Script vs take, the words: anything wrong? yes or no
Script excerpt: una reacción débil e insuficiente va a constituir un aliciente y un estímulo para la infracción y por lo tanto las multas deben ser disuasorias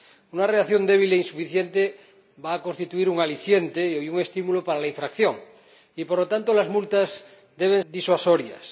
yes